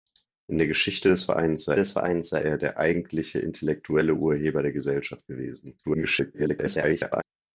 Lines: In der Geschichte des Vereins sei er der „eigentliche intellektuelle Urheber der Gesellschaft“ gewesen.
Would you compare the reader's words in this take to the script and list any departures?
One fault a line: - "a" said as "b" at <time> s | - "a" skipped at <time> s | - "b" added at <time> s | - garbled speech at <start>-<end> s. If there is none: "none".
- "des Vereins sei" added at 1.8 s
- garbled speech at 5.8-7.2 s